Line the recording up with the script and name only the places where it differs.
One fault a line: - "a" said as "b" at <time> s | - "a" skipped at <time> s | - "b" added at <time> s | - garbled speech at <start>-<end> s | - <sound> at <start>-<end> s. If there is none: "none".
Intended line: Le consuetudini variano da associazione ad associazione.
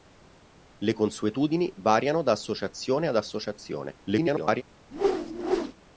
- garbled speech at 4.0-4.6 s
- whoosh at 4.9-5.7 s